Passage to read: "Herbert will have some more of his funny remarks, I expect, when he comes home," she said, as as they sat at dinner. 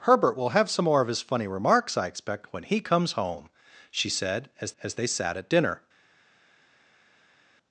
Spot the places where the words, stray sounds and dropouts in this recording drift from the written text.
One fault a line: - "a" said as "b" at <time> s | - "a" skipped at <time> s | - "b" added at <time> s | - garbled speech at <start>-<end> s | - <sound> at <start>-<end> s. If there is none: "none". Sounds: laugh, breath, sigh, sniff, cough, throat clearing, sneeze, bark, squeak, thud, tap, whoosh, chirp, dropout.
none